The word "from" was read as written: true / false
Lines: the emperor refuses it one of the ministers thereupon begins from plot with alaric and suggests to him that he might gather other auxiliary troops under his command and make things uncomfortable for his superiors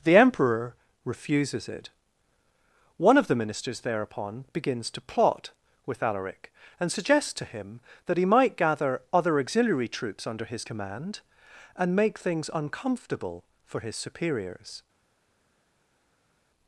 false